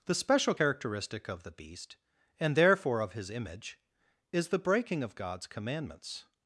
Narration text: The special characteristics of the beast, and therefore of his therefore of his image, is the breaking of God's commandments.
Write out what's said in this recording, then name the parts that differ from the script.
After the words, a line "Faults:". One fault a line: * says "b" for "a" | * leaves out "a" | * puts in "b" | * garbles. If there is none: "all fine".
The special characteristic of the beast, and therefore of his image, is the breaking of God's commandments.
Faults:
* says "characteristic" for "characteristics"
* leaves out "therefore of his"